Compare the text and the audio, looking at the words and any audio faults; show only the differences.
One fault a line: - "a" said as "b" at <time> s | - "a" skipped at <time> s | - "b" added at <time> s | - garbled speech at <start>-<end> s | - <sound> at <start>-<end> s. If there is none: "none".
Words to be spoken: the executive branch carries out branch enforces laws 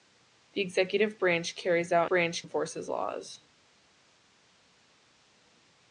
none